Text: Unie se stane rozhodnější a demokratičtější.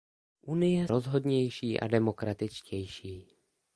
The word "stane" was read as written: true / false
false